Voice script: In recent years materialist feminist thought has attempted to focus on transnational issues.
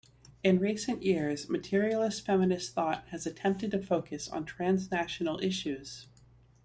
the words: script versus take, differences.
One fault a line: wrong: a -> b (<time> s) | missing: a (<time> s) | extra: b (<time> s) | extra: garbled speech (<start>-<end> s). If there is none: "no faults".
no faults